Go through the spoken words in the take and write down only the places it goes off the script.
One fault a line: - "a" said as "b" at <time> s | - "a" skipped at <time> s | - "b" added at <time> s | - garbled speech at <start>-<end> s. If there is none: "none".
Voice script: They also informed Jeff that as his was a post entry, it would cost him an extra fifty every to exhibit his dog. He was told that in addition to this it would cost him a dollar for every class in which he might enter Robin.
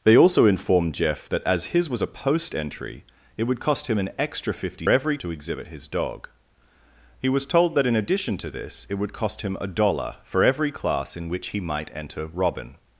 none